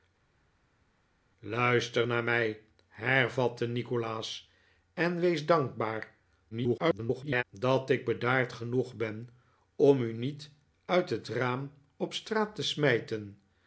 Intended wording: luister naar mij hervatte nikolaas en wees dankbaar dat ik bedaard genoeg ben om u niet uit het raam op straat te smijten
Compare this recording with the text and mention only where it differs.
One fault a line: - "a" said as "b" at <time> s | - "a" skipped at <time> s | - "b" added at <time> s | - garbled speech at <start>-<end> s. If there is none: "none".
- garbled speech at 6.5-7.4 s